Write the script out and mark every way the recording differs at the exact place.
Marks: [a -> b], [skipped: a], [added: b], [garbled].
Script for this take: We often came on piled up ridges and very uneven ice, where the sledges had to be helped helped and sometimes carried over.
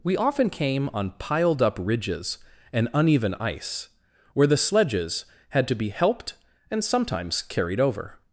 We often came on piled up ridges and [skipped: very] uneven ice, where the sledges had to be helped [skipped: helped] and sometimes carried over.